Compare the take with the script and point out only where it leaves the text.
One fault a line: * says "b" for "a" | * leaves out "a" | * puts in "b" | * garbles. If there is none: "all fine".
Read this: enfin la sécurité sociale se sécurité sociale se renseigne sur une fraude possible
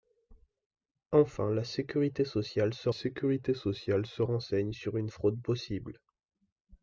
all fine